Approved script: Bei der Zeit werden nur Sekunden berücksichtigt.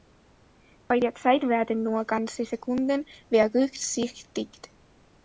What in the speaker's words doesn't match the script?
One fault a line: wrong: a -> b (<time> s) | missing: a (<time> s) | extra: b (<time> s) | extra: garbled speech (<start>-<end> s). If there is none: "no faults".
extra: ganze (2.0 s)